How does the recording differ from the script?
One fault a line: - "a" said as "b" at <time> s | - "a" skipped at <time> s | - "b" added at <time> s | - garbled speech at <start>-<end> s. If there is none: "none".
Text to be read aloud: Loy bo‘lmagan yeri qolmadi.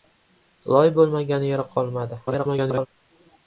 - garbled speech at 2.3-2.9 s